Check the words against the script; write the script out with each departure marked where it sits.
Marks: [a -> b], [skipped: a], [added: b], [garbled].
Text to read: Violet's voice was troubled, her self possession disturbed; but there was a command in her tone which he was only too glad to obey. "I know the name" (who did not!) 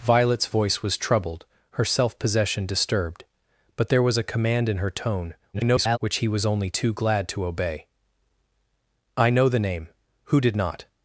Violet's voice was troubled, her self possession disturbed; but there was a command in her tone [garbled] which he was only too glad to obey. "I know the name" (who did not!)